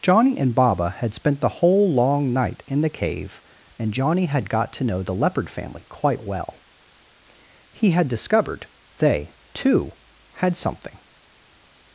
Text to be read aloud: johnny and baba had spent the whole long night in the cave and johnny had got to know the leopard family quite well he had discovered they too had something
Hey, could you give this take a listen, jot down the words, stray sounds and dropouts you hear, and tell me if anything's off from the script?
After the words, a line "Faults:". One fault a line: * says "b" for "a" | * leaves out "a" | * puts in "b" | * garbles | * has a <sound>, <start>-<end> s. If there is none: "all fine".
johnny and baba had spent the whole long night in the cave and johnny had got to know the leopard family quite well he had discovered they too had something
Faults:
all fine